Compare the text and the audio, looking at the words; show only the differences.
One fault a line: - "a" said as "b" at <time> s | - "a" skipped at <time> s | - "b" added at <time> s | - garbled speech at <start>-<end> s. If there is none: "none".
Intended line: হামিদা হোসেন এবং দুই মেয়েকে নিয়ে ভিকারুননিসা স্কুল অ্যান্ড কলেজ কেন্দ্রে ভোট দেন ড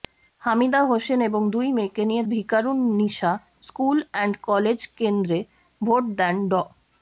none